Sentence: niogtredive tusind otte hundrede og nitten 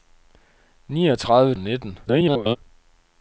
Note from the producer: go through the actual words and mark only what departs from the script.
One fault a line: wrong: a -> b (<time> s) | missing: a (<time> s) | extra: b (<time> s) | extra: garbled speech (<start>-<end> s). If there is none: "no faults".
missing: tusind otte hundrede (1.6 s)
extra: garbled speech (2.1-2.6 s)